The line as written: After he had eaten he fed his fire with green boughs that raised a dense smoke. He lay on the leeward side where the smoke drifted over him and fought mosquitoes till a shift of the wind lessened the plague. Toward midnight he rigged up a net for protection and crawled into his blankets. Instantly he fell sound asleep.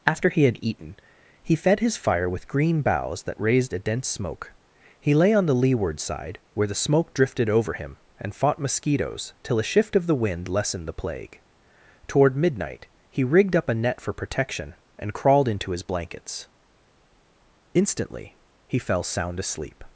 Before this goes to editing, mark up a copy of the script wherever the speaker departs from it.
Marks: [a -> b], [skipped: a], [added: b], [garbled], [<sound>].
After he had eaten he fed his fire with green boughs that raised a dense smoke. He lay on the leeward side where the smoke drifted over him and fought mosquitoes till a shift of the wind lessened the plague. Toward midnight he rigged up a net for protection and crawled into his blankets. Instantly he fell sound asleep.